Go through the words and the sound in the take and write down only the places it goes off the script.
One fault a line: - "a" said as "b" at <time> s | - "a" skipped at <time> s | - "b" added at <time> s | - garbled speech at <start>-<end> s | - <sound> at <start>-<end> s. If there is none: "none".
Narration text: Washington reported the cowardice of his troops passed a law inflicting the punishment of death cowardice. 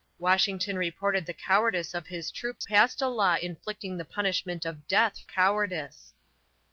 - dropout at 2.6-2.6 s